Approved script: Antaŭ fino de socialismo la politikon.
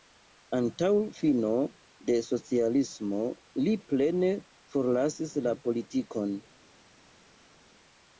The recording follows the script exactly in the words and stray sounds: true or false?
false